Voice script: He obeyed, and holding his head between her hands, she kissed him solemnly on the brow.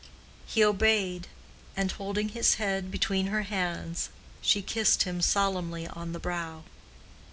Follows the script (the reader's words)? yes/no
yes